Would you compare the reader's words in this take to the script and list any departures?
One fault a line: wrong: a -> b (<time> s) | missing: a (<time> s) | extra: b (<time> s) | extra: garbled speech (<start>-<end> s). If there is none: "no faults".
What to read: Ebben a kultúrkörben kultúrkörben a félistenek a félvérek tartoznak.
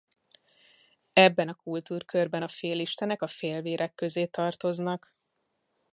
missing: kultúrkörben (2.4 s)
extra: közé (3.9 s)